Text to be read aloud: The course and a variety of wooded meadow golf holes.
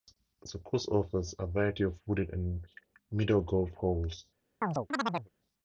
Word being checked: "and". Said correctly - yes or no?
no